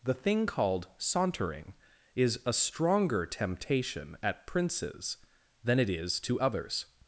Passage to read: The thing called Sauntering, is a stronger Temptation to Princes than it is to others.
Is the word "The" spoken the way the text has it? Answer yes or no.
yes